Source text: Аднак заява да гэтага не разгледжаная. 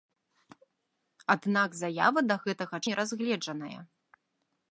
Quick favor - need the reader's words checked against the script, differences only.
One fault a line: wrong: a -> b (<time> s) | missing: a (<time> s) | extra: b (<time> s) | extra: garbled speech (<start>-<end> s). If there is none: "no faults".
no faults